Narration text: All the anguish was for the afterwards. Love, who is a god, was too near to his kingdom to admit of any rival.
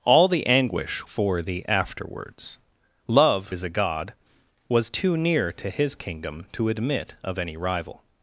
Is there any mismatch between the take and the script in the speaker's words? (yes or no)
yes